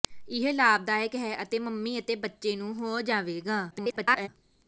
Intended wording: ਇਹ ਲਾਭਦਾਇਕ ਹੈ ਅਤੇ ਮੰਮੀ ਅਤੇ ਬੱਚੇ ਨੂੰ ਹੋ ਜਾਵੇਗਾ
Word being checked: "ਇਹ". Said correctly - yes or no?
yes